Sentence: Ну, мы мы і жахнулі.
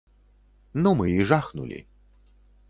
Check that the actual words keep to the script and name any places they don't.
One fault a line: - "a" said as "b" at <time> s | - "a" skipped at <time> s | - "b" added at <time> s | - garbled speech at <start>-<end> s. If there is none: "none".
- "мы" skipped at 1.1 s